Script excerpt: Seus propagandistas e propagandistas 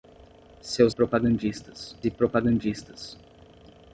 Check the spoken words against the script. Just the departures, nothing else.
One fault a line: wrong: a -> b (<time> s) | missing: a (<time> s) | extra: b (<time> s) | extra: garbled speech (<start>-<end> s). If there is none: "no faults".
no faults